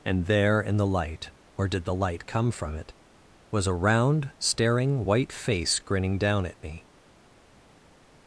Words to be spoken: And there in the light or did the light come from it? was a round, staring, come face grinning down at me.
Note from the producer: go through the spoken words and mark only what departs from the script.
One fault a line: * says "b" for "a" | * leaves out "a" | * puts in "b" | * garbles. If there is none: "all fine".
* says "white" for "come"